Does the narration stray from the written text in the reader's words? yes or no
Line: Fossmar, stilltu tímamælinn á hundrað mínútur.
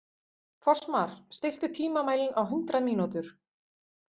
no